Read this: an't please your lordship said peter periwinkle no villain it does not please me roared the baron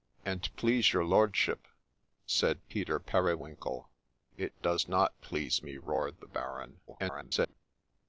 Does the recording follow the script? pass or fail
fail